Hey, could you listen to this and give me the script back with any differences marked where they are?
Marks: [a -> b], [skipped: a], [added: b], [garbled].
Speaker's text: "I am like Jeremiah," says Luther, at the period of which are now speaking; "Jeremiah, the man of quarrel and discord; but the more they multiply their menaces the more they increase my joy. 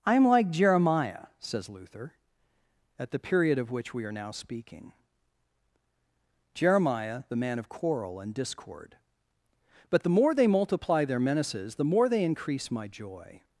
"I am like Jeremiah," says Luther, at the period of which [added: we] are now speaking; "Jeremiah, the man of quarrel and discord; but the more they multiply their menaces the more they increase my joy.